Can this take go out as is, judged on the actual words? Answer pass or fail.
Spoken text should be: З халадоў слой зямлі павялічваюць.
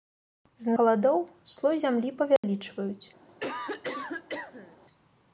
pass